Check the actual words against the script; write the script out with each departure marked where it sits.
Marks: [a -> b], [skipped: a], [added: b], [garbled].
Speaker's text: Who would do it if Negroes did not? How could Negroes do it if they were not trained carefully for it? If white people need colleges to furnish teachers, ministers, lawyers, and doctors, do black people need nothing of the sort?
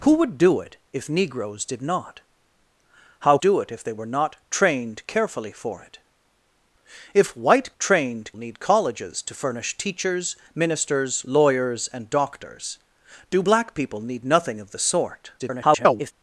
Who would do it if Negroes did not? How [skipped: could Negroes] do it if they were not trained carefully for it? If white [people -> trained] need colleges to furnish teachers, ministers, lawyers, and doctors, do black people need nothing of the sort? [garbled]